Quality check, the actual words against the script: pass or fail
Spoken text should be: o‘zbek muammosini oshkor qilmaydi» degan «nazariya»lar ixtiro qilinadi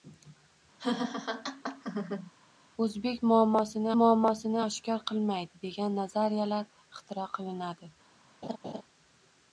fail